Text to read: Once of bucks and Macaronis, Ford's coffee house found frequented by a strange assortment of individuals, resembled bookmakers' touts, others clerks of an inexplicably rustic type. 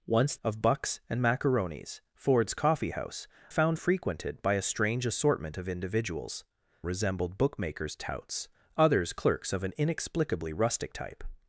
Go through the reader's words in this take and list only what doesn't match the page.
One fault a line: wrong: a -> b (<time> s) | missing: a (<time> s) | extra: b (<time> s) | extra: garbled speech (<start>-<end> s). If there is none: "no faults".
no faults